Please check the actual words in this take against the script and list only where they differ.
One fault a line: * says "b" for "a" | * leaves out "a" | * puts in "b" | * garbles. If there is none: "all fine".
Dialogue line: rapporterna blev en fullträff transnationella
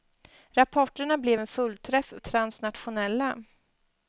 all fine